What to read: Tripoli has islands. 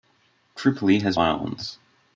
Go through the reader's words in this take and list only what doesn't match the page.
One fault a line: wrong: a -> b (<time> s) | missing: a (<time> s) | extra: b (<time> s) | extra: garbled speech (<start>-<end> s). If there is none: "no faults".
no faults